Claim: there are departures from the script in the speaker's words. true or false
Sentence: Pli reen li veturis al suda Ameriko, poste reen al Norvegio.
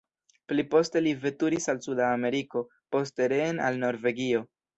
true